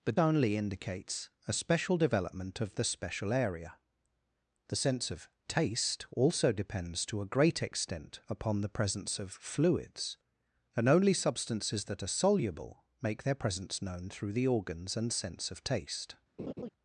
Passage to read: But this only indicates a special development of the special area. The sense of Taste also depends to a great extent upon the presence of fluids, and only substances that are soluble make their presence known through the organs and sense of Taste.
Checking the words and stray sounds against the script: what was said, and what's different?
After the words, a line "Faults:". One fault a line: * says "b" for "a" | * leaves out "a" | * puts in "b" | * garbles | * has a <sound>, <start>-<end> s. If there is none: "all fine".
But only indicates a special development of the special area. The sense of Taste also depends to a great extent upon the presence of fluids, and only substances that are soluble make their presence known through the organs and sense of Taste.
Faults:
* leaves out "this"
* has a laugh, 16.4-16.7 s